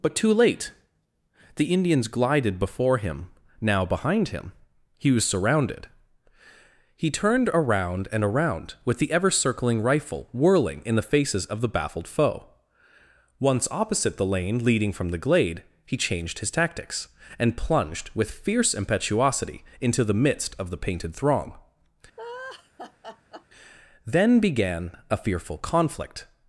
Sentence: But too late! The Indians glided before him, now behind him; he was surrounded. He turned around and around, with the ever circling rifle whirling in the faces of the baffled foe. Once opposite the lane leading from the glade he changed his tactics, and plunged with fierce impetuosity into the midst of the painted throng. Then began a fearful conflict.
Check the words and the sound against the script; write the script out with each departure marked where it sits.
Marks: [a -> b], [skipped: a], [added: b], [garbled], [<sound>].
But too late! The Indians glided before him, now behind him; he was surrounded. He turned around and around, with the ever circling rifle whirling in the faces of the baffled foe. Once opposite the lane leading from the glade he changed his tactics, and plunged with fierce impetuosity into the midst of the painted throng. [laugh] Then began a fearful conflict.